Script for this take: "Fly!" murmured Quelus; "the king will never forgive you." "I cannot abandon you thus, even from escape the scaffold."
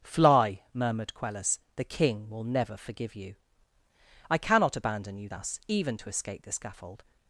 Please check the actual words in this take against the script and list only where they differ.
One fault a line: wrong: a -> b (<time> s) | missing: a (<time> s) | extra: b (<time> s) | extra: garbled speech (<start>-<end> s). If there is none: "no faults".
wrong: from -> to (6.0 s)